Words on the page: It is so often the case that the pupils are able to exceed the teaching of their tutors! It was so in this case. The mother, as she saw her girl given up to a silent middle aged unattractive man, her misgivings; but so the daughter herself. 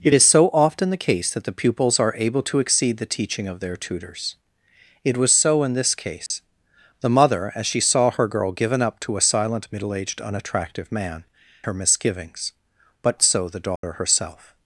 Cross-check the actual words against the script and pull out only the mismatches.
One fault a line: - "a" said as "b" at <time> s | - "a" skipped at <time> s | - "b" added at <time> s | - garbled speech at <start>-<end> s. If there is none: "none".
none